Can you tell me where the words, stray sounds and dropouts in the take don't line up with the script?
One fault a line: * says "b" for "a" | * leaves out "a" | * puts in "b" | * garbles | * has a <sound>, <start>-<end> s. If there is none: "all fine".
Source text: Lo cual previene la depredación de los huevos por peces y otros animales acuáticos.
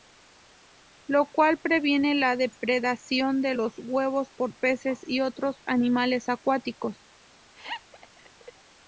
* has a laugh, 7.5-8.5 s